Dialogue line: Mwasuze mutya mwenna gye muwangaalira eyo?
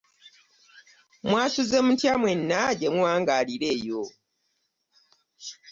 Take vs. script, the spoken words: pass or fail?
pass